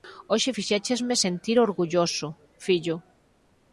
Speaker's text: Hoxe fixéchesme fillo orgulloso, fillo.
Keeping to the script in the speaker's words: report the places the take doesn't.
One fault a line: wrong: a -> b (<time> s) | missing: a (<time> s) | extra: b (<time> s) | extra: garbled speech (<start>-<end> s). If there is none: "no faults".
wrong: fillo -> sentir (1.2 s)